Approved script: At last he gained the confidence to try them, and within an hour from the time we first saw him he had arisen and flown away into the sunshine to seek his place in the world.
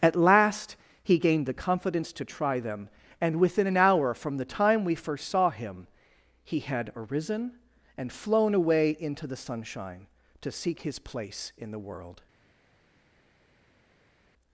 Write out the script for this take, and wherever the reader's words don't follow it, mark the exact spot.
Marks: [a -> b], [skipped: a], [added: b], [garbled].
At last he gained the confidence to try them, and within an hour from the time we first saw him he had arisen and flown away into the sunshine to seek his place in the world.